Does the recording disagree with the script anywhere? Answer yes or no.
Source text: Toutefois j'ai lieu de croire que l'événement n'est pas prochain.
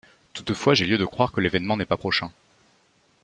no